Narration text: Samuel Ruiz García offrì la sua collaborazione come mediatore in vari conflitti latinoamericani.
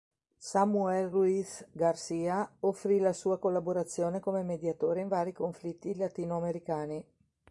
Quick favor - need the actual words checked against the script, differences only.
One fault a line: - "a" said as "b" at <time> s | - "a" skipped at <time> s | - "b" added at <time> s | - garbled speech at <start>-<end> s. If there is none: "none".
none